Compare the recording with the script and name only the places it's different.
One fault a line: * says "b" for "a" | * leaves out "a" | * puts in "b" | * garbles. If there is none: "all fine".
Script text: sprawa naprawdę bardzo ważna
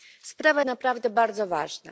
all fine